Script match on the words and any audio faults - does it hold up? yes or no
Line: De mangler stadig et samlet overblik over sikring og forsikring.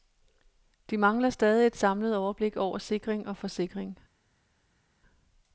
yes